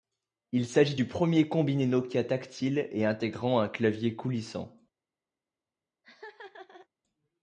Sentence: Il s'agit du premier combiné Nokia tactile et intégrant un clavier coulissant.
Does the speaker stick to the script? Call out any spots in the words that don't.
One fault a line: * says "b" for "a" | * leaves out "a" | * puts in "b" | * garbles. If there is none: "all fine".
all fine